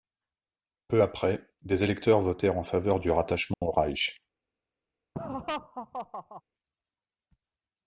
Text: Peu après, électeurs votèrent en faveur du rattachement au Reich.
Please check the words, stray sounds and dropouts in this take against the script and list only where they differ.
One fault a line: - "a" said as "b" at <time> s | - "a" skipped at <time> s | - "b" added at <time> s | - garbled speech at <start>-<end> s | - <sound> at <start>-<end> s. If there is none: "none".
- "des" added at 1.6 s
- dropout at 3.5-3.6 s
- laugh at 5.1-6.4 s